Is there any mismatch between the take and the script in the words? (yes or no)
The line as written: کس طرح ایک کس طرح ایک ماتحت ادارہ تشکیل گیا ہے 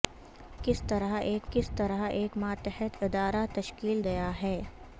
no